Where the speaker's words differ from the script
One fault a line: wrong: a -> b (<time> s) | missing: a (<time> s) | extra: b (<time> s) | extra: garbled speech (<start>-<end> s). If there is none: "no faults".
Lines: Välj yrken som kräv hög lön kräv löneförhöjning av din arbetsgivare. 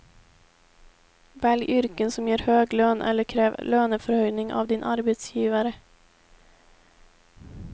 wrong: kräv -> ger (2.3 s)
extra: eller (3.0 s)